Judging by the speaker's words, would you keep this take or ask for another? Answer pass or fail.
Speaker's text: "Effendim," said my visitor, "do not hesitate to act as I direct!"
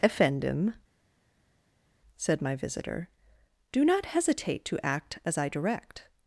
pass